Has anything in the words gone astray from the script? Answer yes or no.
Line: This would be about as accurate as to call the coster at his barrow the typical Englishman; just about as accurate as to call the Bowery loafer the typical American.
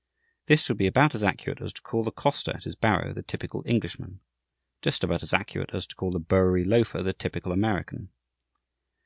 no